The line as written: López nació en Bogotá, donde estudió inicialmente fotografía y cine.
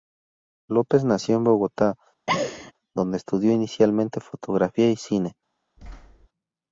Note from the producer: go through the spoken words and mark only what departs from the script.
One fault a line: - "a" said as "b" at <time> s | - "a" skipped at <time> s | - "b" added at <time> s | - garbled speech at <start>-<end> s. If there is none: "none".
none